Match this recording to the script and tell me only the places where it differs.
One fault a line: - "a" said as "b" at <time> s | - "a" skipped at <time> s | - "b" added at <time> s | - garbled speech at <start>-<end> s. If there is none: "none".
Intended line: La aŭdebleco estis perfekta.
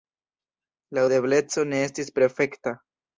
- "ne" added at 1.7 s